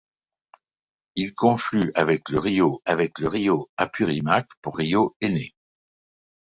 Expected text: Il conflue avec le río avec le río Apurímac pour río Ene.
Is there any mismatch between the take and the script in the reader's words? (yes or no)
no